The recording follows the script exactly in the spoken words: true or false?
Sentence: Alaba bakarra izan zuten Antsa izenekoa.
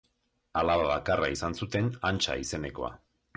true